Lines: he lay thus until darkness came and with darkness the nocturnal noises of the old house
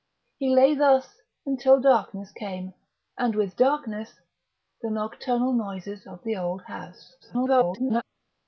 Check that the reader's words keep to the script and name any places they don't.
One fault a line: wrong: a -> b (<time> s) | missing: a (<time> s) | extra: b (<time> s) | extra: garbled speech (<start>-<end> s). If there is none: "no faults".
extra: garbled speech (7.2-8.0 s)